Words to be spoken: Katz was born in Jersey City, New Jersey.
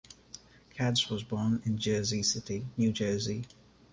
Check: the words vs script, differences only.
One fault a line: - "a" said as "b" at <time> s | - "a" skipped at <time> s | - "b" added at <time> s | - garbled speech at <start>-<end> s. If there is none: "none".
none